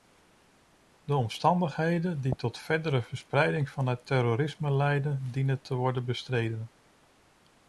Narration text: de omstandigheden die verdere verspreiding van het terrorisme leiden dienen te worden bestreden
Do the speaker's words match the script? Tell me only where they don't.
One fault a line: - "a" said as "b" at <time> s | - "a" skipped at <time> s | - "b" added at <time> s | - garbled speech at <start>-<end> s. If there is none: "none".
- "tot" added at 2.4 s